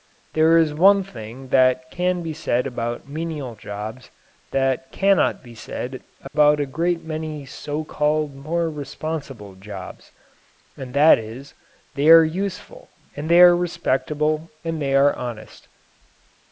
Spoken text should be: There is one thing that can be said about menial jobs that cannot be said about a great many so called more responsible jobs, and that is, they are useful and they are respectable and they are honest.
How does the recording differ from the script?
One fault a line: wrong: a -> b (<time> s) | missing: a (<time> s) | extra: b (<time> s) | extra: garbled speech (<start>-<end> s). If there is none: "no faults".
no faults